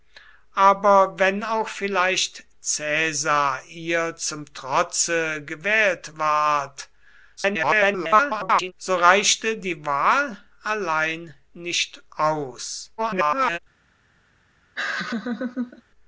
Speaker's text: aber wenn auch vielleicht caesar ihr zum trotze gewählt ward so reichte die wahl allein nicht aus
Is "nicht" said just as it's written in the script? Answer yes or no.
yes